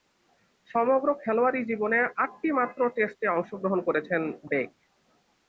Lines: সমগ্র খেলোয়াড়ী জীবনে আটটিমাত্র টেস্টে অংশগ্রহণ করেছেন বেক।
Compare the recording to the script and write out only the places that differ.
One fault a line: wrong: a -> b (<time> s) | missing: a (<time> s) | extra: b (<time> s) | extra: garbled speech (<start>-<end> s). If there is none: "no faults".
no faults